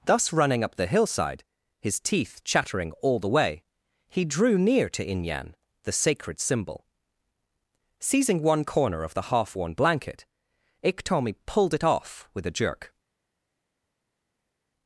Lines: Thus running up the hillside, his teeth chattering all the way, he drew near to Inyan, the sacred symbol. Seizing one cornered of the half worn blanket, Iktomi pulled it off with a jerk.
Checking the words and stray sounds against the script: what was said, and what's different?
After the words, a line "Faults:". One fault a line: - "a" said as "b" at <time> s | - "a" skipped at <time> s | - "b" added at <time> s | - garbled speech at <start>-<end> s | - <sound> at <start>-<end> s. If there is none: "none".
Thus running up the hillside, his teeth chattering all the way, he drew near to Inyan, the sacred symbol. Seizing one corner of the half worn blanket, Iktomi pulled it off with a jerk.
Faults:
- "cornered" said as "corner" at 8.7 s